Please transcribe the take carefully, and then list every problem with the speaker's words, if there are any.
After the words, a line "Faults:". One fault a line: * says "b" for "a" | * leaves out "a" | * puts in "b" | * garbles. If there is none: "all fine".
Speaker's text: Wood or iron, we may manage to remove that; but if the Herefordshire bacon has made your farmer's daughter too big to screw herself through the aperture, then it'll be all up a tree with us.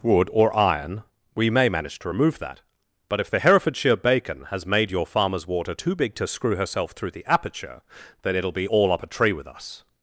Wood or iron, we may manage to remove that; but if the Herefordshire bacon has made your farmer's water too big to screw herself through the aperture, then it'll be all up a tree with us.
Faults:
* says "water" for "daughter"